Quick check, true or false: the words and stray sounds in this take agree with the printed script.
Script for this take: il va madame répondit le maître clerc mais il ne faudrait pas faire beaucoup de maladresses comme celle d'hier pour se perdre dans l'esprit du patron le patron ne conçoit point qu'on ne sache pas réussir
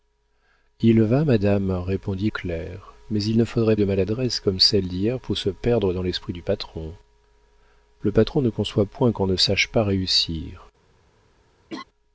false